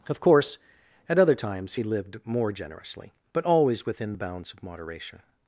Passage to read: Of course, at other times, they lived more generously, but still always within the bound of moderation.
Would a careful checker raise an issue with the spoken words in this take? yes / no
yes